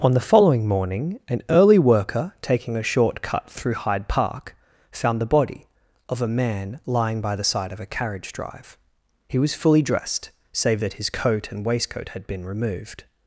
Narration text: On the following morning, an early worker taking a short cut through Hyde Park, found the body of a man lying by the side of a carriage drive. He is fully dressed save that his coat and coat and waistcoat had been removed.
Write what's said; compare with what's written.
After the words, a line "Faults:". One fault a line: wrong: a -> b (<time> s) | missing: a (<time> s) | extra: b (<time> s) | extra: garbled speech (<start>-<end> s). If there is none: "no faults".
On the following morning, an early worker taking a short cut through Hyde Park, found the body of a man lying by the side of a carriage drive. He was fully dressed save that his coat and waistcoat had been removed.
Faults:
wrong: is -> was (9.4 s)
missing: coat and (11.7 s)